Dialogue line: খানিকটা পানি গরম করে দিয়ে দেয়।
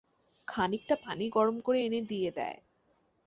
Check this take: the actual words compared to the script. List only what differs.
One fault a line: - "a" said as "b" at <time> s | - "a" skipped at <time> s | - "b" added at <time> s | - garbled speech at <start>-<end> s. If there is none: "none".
- "এনে" added at 1.9 s